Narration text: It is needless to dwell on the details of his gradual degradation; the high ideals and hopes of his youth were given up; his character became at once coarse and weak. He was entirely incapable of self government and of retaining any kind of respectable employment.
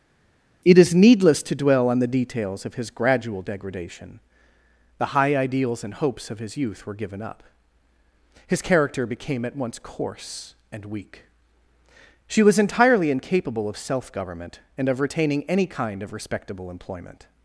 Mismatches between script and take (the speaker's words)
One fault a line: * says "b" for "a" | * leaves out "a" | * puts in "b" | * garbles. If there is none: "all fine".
* says "She" for "He"